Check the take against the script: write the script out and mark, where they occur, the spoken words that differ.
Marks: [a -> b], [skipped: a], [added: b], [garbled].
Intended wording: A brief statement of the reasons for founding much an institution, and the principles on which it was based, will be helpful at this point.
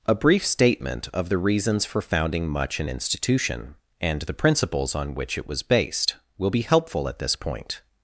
A brief statement of the reasons for founding much an institution, and the principles on which it was based, will be helpful at this point.